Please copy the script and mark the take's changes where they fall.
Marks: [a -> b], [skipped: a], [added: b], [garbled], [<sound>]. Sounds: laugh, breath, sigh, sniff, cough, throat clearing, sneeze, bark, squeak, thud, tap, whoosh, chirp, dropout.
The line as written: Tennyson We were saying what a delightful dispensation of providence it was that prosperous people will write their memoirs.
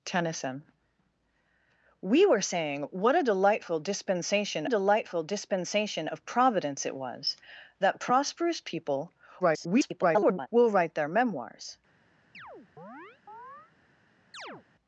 Tennyson We were saying what a delightful dispensation [added: delightful dispensation] of providence it was that prosperous people [garbled] will write their memoirs. [chirp] [chirp]